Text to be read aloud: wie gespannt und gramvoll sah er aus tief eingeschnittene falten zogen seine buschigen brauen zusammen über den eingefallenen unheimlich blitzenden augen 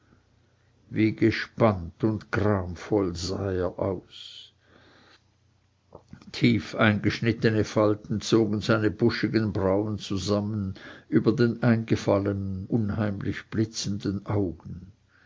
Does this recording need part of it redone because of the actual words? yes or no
no